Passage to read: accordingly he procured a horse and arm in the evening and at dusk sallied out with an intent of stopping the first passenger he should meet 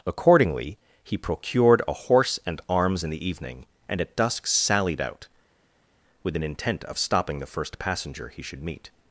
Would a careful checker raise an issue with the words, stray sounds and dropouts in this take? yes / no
yes